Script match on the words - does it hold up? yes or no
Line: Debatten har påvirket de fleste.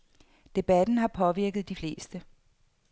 yes